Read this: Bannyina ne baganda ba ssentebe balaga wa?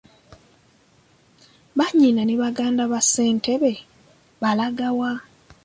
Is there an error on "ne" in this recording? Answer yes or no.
no